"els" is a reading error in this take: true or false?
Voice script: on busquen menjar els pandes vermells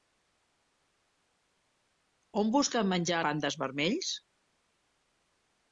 true